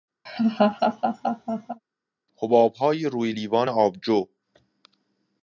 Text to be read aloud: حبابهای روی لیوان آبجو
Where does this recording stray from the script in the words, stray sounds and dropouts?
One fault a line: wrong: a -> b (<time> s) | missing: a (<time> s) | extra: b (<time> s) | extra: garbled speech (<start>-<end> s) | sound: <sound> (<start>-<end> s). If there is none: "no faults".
sound: laugh (0.3-1.8 s)